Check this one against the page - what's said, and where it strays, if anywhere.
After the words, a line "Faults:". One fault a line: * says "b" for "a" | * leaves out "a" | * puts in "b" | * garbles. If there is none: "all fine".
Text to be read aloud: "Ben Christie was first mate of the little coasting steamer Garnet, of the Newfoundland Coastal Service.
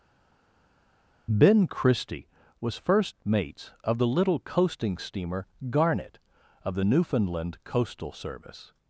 "Ben Christie was first mates of the little coasting steamer Garnet, of the Newfoundland Coastal Service.
Faults:
* says "mates" for "mate"